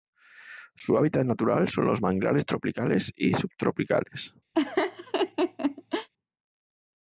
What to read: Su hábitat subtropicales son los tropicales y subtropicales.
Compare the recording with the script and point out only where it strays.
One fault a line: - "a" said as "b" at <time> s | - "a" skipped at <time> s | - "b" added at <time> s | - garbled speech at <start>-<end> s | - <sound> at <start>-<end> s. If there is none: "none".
- "subtropicales" said as "natural" at 1.3 s
- "manglares" added at 2.0 s
- laugh at 4.5-6.1 s